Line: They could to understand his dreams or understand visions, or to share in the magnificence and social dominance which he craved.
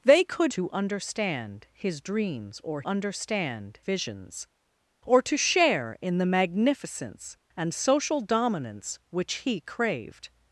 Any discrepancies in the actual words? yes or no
no